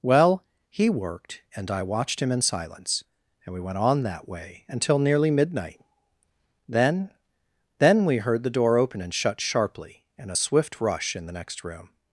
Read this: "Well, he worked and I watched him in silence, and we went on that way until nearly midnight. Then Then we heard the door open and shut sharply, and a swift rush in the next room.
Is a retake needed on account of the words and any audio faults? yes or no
no